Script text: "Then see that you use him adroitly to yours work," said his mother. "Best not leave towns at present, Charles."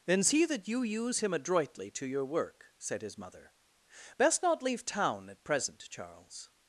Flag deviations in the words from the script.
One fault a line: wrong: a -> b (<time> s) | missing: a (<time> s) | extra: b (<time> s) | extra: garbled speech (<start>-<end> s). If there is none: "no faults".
wrong: yours -> your (2.1 s)
wrong: towns -> town (4.9 s)